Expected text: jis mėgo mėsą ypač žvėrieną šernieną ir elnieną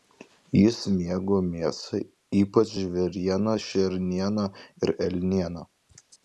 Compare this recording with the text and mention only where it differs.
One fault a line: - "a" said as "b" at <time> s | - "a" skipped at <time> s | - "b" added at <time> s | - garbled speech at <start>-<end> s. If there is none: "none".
none